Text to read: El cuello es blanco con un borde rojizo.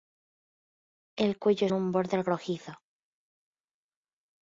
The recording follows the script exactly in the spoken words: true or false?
false